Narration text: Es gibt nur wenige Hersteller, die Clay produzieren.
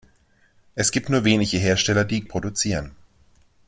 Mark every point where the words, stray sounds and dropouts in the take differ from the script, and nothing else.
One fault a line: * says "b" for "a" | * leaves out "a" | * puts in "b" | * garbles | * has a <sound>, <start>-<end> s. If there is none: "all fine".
* leaves out "Clay"